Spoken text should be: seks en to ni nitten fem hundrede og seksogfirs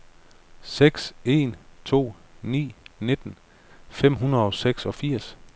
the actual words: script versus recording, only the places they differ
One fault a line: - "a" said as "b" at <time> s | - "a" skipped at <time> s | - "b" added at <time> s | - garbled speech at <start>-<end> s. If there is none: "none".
none